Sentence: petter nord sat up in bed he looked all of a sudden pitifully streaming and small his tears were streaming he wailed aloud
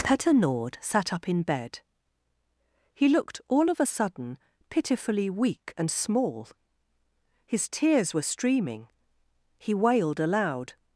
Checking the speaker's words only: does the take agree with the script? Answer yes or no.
no